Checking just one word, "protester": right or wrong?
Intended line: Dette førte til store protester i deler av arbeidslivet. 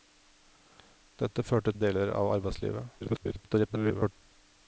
wrong